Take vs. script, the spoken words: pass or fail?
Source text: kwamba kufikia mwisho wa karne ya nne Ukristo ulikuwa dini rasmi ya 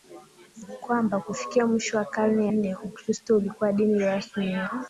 fail